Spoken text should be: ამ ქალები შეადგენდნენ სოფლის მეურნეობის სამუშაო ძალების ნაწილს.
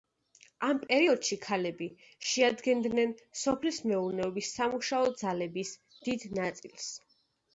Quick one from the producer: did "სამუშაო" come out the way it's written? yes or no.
yes